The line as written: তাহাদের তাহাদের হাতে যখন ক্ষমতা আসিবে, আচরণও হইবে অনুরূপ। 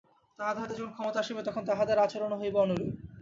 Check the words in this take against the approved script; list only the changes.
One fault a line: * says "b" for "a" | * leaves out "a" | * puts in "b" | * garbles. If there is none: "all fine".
* leaves out "তাহাদের"
* puts in "তখন তাহাদের"